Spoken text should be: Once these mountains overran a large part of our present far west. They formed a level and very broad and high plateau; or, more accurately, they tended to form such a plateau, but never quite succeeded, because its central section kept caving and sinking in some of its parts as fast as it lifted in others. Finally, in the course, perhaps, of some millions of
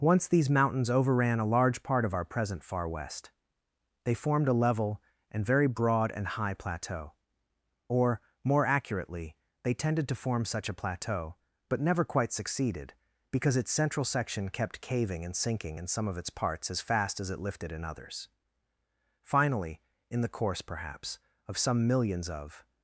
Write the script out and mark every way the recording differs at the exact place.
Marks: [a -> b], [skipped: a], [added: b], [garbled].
Once these mountains overran a large part of our present far west. They formed a level and very broad and high plateau; or, more accurately, they tended to form such a plateau, but never quite succeeded, because its central section kept caving and sinking in some of its parts as fast as it lifted in others. Finally, in the course, perhaps, of some millions of